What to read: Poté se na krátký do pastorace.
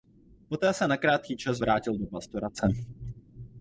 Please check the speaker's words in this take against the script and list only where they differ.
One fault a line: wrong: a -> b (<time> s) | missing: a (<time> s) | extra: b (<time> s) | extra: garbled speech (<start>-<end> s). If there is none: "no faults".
extra: čas vrátil (1.4 s)